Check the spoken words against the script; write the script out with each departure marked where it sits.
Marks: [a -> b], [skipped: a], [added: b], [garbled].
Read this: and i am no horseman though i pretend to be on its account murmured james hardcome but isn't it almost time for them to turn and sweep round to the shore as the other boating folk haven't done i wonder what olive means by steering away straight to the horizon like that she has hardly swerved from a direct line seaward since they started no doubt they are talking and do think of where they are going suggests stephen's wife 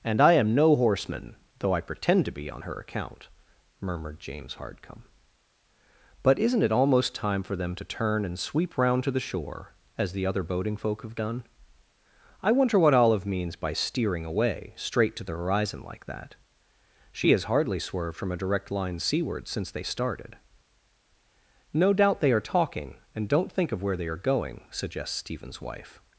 and i am no horseman though i pretend to be on [its -> her] account murmured james hardcome but isn't it almost time for them to turn and sweep round to the shore as the other boating folk [haven't -> have] done i wonder what olive means by steering away straight to the horizon like that she has hardly swerved from a direct line seaward since they started no doubt they are talking and [do -> don't] think of where they are going suggests stephen's wife